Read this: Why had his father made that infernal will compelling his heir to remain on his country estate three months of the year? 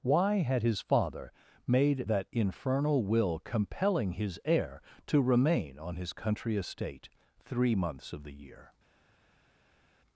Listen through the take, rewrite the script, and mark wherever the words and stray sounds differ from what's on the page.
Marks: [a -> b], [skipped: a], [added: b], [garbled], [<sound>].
Why had his father made that infernal will compelling his heir to remain on his country estate three months of the year?